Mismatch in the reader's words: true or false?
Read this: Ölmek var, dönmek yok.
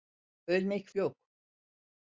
true